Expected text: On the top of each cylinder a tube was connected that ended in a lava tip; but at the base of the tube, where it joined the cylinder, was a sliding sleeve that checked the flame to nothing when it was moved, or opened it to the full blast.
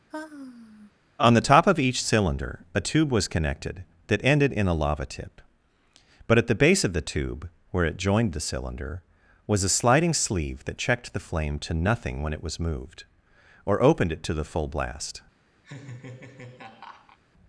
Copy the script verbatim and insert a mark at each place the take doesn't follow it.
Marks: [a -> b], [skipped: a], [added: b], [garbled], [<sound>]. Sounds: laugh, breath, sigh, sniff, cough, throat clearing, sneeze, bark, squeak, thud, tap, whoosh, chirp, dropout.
[sigh] On the top of each cylinder a tube was connected that ended in a lava tip; but at the base of the tube, where it joined the cylinder, was a sliding sleeve that checked the flame to nothing when it was moved, or opened it to the full blast. [laugh]